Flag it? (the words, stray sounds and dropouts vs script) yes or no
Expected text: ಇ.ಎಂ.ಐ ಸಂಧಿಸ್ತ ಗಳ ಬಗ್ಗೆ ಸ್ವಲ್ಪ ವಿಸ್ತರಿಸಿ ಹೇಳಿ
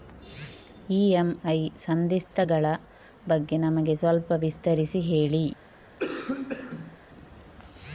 yes